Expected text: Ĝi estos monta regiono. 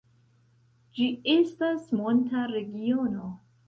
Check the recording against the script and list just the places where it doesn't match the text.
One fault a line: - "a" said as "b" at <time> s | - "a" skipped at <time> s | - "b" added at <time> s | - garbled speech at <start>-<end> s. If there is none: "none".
- "estos" said as "estas" at 1.4 s